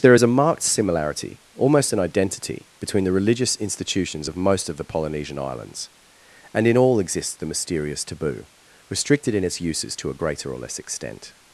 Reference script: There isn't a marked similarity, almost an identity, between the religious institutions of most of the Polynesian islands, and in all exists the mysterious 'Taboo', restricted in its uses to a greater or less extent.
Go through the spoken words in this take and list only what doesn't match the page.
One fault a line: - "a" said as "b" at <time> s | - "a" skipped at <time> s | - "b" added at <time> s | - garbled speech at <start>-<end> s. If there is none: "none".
- "isn't" said as "is" at 0.1 s